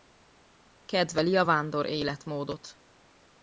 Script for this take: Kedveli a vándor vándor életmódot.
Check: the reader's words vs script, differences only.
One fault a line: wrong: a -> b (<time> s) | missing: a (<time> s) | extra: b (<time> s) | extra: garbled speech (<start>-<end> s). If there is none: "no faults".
missing: vándor (1.9 s)